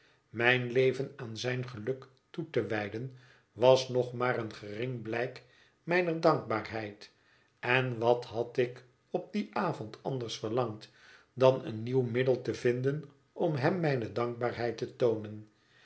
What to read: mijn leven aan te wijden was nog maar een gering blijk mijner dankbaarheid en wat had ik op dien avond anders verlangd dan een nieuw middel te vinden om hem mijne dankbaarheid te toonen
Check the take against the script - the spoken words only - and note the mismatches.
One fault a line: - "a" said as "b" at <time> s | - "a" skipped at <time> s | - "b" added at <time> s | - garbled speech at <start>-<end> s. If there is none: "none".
- "zijn geluk toe" added at 1.4 s